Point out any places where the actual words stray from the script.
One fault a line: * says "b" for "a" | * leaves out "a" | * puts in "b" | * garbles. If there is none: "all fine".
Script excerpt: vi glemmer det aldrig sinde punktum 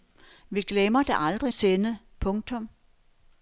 all fine